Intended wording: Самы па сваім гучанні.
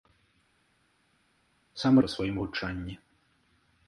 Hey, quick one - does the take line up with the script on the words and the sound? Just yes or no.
yes